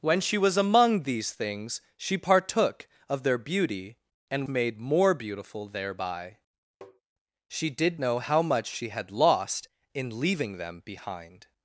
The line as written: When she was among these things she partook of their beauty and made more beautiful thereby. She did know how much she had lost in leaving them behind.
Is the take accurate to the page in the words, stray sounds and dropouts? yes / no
no